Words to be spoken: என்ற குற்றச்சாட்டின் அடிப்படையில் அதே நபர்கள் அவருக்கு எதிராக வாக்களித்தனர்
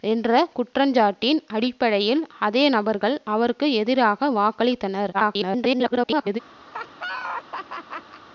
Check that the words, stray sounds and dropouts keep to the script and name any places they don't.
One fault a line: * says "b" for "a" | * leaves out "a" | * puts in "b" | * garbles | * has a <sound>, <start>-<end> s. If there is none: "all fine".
* garbles
* has a laugh, 6.7-8.2 s